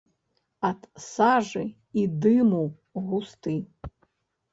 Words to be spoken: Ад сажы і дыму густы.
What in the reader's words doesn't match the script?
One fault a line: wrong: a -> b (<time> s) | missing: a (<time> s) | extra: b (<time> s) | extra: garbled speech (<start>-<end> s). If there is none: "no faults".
no faults